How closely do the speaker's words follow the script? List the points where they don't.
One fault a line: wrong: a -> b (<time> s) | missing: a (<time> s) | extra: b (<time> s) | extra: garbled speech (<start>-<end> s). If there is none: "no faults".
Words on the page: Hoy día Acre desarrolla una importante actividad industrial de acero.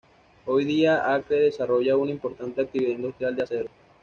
no faults